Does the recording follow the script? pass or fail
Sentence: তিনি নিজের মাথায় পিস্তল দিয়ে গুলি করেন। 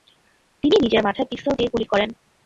pass